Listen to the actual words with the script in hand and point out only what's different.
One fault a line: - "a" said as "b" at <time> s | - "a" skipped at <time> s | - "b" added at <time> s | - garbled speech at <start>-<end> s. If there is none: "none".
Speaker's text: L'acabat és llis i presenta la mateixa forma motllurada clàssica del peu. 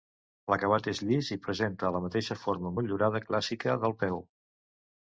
none